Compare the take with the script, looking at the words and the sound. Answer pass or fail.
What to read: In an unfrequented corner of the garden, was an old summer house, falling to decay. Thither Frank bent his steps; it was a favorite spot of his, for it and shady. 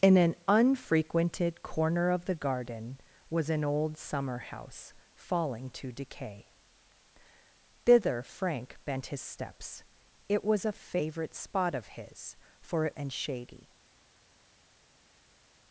pass